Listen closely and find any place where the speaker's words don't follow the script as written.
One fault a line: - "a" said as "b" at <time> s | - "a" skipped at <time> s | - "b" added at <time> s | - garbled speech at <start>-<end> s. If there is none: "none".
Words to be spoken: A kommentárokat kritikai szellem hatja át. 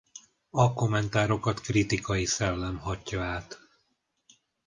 none